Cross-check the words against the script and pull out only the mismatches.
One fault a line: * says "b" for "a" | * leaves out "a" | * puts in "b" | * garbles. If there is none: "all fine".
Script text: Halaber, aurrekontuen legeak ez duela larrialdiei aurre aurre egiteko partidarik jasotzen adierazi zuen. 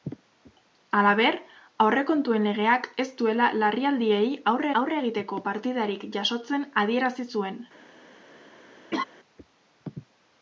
all fine